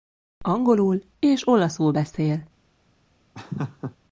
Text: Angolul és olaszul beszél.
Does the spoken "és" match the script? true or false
true